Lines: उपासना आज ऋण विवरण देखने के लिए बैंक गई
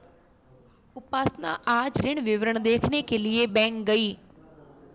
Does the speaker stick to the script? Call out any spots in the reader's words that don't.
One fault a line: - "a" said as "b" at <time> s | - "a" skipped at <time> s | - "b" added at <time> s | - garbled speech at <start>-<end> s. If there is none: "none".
none